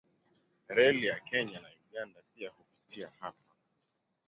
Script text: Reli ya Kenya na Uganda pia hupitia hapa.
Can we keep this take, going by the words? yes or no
yes